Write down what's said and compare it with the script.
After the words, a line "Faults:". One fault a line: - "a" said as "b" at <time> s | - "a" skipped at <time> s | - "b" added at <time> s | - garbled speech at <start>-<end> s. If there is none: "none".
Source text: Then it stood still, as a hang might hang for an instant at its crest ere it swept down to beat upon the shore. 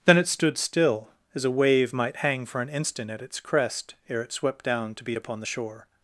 Then it stood still, as a wave might hang for an instant at its crest ere it swept down to beat upon the shore.
Faults:
- "hang" said as "wave" at 1.5 s